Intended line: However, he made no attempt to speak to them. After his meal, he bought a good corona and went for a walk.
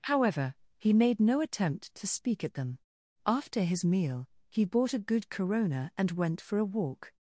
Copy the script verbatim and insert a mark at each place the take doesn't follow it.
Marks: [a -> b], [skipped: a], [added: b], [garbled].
However, he made no attempt to speak [to -> at] them. After his meal, he bought a good corona and went for a walk.